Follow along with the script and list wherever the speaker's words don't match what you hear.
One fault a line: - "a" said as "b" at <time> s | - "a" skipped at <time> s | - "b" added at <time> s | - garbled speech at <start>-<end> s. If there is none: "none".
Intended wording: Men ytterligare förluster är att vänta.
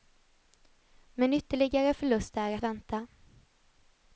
- "att" skipped at 2.6 s